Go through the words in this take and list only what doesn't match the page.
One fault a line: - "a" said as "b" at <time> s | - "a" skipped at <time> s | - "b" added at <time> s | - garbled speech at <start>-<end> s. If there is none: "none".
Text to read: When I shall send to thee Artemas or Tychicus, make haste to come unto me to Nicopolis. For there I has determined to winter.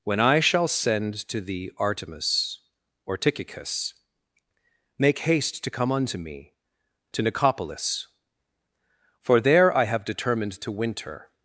- "has" said as "have" at 9.9 s